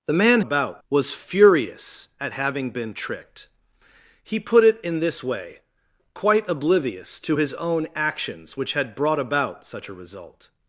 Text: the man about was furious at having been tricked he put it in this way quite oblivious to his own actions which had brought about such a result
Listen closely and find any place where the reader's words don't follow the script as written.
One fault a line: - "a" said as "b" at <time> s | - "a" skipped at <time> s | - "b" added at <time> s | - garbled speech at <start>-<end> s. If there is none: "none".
none